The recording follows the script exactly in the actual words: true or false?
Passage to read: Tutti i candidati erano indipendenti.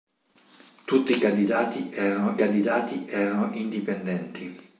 false